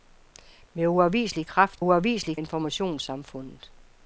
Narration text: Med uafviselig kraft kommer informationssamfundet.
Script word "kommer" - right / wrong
wrong